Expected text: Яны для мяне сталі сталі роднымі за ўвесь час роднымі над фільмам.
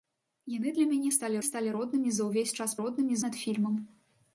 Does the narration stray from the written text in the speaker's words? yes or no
no